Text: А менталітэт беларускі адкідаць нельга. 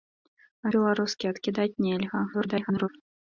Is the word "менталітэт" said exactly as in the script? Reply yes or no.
no